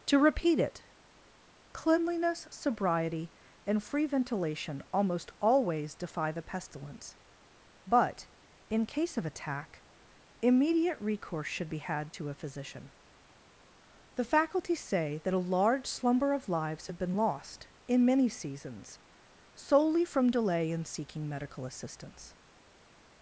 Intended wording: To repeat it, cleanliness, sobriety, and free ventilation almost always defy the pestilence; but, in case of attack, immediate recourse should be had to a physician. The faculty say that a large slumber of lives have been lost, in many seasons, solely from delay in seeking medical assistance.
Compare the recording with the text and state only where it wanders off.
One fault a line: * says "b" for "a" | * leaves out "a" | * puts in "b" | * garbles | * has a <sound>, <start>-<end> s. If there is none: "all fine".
all fine